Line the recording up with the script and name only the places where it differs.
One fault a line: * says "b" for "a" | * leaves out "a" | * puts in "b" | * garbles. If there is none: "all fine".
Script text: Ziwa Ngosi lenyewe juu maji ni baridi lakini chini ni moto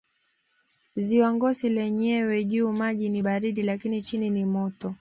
all fine